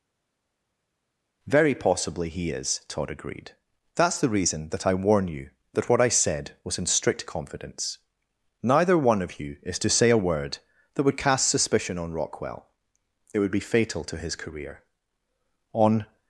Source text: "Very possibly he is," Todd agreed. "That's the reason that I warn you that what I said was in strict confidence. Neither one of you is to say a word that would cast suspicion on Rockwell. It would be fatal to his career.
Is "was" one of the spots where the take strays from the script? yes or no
no